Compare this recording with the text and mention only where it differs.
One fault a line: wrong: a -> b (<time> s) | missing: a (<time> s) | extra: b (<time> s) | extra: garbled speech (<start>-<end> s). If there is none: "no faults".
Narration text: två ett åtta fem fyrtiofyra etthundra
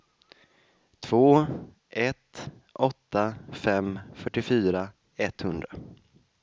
no faults